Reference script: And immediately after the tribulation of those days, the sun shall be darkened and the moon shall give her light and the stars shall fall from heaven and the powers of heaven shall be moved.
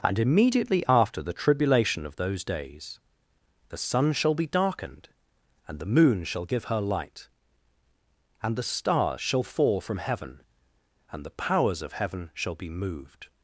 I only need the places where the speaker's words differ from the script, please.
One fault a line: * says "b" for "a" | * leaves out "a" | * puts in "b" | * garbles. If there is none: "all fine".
all fine